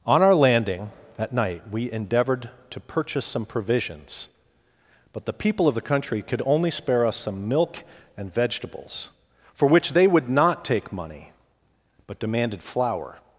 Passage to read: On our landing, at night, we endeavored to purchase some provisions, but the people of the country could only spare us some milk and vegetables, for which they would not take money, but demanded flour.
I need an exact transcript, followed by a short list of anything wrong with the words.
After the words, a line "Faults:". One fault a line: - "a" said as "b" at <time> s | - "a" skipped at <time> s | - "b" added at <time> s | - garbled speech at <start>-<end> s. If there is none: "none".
On our landing, that night, we endeavored to purchase some provisions, but the people of the country could only spare us some milk and vegetables, for which they would not take money, but demanded flour.
Faults:
- "at" said as "that" at 1.2 s